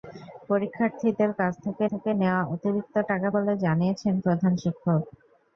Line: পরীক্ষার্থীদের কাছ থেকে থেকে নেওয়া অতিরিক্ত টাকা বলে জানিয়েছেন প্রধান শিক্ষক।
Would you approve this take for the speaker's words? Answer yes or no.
yes